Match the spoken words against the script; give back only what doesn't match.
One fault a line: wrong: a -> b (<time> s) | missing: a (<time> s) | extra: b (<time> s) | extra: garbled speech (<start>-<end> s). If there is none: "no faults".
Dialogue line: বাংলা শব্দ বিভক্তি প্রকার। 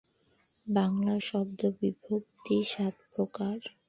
extra: সাত (2.6 s)